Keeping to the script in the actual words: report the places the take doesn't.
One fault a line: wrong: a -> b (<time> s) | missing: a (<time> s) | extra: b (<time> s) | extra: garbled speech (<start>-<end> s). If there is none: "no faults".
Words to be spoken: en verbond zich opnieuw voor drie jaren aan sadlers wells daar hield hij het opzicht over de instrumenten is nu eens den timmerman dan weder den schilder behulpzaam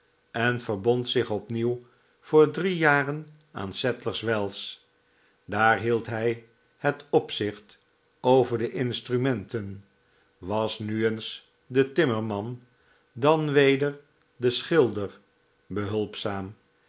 wrong: is -> was (10.4 s)